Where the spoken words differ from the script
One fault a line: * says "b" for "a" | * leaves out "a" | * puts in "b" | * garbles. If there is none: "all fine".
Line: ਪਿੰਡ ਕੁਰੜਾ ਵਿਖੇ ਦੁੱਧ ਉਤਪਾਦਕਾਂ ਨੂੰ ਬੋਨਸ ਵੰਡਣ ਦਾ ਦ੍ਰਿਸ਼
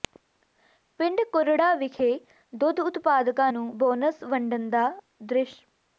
all fine